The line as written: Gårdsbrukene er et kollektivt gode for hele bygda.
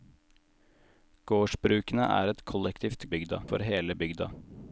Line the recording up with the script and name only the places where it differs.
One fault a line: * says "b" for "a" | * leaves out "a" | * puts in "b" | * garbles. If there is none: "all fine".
* says "bygda" for "gode"